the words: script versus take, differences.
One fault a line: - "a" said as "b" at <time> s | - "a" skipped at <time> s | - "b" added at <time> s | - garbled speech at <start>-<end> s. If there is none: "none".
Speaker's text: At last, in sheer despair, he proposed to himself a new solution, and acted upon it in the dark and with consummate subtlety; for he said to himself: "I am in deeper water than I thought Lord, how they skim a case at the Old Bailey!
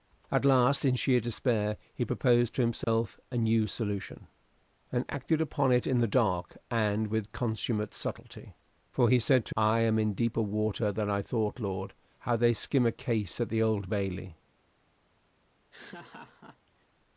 - "himself" skipped at 9.6 s